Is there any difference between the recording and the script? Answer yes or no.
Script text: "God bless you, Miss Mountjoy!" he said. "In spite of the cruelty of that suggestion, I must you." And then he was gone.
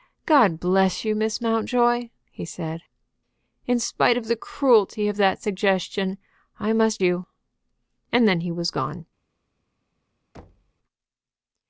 no